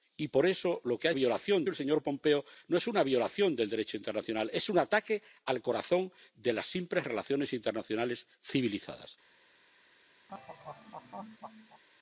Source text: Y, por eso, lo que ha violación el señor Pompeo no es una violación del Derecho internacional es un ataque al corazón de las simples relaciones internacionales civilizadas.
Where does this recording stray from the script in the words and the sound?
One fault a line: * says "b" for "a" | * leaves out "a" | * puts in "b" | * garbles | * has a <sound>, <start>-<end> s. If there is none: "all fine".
* has a laugh, 10.3-11.8 s